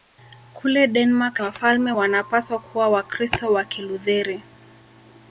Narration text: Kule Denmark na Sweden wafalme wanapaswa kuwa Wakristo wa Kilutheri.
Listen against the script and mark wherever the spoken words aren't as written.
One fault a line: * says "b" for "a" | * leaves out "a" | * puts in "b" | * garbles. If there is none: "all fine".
* leaves out "na Sweden"